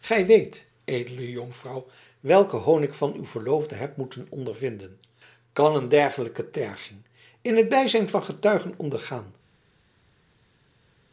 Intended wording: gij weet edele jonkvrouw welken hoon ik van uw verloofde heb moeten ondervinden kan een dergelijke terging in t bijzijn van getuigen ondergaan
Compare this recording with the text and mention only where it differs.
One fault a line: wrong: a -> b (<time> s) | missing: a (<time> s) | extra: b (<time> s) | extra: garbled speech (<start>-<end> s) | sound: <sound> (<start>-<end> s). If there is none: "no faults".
no faults